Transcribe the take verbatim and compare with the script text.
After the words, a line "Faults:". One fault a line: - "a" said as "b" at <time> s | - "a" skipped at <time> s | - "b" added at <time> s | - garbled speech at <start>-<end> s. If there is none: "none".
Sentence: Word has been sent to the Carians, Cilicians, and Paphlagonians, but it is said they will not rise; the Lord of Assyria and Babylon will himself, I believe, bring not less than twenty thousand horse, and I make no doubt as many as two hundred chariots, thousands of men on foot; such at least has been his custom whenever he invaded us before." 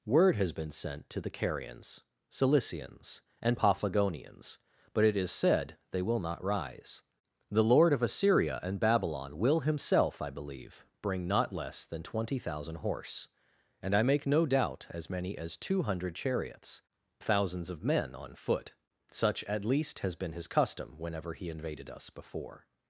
Word has been sent to the Carians, Cilicians, and Paphlagonians, but it is said they will not rise; the Lord of Assyria and Babylon will himself, I believe, bring not less than twenty thousand horse, and I make no doubt as many as two hundred chariots, thousands of men on foot; such at least has been his custom whenever he invaded us before."
Faults:
none